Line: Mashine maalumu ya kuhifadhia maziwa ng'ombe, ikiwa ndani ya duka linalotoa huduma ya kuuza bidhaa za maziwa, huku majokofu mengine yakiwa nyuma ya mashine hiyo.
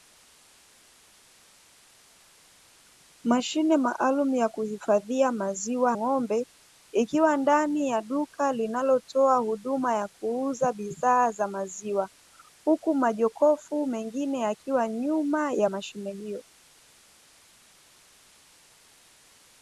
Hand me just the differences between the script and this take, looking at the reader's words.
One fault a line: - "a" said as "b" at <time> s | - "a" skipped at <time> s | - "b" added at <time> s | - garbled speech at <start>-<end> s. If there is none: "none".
none